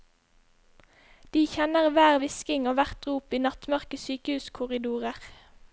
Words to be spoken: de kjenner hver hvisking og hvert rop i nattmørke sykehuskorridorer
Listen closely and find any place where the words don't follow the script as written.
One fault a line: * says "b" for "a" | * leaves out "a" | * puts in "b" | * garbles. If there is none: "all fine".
all fine